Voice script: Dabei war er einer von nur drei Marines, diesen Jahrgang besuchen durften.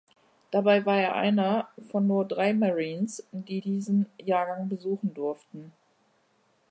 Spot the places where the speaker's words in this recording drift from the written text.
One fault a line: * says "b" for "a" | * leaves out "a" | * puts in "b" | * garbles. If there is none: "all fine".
* puts in "die"